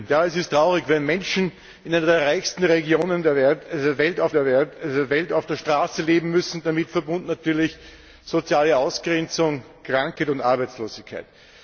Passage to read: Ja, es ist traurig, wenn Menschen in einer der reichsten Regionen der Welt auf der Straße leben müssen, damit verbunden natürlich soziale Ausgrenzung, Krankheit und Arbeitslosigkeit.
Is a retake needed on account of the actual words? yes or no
yes